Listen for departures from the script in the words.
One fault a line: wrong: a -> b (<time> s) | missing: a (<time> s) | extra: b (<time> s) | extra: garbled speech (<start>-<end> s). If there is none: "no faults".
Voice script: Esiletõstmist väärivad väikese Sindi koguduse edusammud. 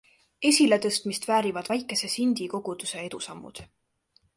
no faults